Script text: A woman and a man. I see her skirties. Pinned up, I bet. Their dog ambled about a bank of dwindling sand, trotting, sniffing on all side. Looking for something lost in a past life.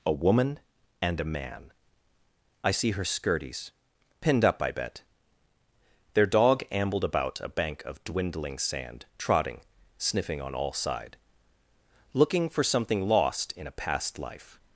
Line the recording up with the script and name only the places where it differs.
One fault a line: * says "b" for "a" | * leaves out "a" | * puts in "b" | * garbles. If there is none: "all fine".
all fine